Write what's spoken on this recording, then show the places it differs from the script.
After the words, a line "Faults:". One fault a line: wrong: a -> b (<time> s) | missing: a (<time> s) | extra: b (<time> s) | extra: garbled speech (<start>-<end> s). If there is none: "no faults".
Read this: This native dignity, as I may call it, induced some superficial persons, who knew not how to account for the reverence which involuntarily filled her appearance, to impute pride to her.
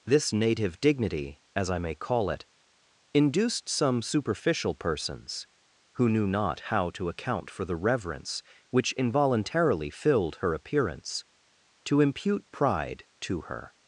This native dignity, as I may call it, induced some superficial persons, who knew not how to account for the reverence which involuntarily filled her appearance, to impute pride to her.
Faults:
no faults